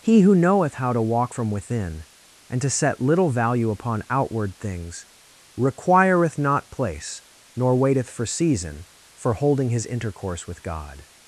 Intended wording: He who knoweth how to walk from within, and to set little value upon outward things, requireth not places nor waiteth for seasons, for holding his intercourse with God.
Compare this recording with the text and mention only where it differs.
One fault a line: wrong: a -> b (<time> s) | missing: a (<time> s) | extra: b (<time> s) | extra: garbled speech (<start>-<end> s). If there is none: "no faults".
wrong: places -> place (6.7 s)
wrong: seasons -> season (8.2 s)